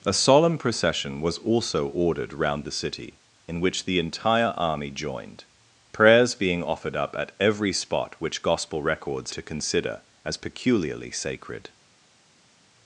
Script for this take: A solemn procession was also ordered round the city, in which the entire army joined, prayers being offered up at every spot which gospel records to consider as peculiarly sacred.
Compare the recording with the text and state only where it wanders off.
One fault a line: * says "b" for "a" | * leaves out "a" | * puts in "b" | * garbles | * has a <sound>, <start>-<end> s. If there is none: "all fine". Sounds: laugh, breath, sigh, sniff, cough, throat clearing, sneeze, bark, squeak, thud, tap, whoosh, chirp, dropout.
all fine